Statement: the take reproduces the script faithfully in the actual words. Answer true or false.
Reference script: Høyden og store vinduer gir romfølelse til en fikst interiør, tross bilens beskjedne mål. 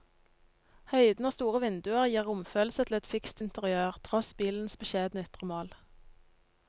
false